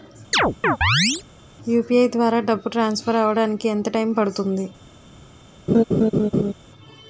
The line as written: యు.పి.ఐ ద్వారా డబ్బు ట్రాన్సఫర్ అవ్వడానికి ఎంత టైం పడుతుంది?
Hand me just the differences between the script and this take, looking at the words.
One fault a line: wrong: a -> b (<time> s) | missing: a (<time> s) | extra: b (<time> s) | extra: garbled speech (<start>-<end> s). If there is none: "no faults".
no faults